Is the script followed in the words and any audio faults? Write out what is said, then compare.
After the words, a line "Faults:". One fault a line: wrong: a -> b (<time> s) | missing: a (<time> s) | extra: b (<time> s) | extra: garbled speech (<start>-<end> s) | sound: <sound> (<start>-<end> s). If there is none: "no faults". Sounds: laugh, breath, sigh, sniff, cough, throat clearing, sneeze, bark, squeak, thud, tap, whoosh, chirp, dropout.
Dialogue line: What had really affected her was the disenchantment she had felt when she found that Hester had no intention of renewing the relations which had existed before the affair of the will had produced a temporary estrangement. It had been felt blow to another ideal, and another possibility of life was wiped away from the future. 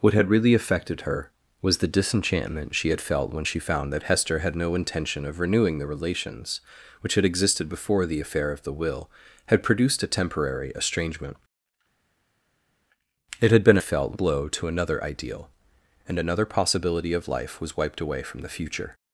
What had really affected her was the disenchantment she had felt when she found that Hester had no intention of renewing the relations which had existed before the affair of the will had produced a temporary estrangement. It had been felt blow to another ideal, and another possibility of life was wiped away from the future.
Faults:
no faults